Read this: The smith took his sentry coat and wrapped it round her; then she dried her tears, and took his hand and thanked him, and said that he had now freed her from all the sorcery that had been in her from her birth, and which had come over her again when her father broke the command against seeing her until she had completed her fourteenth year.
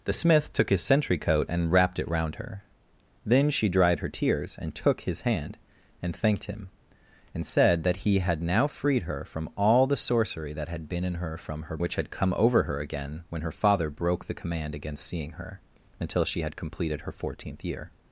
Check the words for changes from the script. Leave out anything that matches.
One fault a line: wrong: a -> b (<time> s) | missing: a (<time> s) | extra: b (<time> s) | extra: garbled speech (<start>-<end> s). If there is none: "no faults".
missing: birth and (11.8 s)